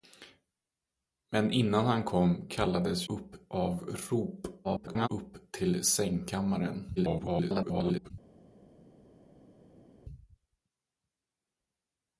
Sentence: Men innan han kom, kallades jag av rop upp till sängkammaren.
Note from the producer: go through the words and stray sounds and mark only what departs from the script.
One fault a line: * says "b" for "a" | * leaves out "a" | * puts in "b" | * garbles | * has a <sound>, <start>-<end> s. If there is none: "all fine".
* says "upp" for "jag"
* garbles
* garbles